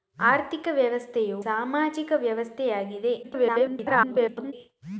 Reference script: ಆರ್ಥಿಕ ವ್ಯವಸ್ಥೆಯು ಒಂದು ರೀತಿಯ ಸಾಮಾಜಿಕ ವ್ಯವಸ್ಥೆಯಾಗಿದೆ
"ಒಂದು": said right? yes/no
no